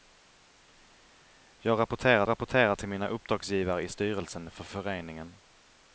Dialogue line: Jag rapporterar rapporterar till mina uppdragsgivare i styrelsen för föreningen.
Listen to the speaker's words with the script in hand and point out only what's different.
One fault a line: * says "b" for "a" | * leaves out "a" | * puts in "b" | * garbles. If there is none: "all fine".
all fine